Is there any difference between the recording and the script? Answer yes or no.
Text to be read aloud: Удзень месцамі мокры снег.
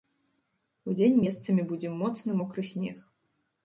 yes